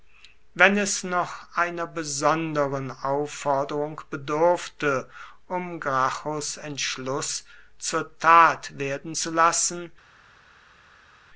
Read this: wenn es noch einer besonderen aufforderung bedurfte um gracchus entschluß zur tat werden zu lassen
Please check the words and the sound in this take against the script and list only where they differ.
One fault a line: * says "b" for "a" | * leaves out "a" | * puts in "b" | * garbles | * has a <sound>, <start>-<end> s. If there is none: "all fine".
all fine